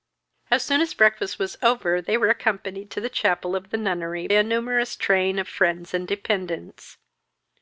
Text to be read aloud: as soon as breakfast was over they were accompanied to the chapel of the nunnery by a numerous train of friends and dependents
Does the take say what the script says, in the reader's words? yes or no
no